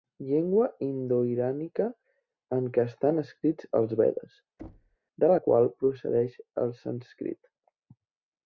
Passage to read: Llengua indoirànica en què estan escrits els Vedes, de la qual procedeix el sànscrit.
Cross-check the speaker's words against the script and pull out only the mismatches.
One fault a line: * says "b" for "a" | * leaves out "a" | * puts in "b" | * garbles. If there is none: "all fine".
all fine